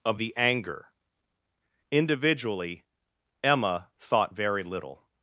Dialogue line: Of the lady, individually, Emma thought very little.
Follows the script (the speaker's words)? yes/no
no